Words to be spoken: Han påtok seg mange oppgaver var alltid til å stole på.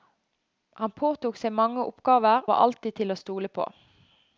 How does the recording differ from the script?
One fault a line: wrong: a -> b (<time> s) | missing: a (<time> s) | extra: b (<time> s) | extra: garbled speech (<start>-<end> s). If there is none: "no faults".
no faults